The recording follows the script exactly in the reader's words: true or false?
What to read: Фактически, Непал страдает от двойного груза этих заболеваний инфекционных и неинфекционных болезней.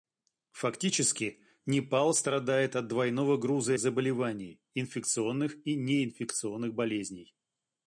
false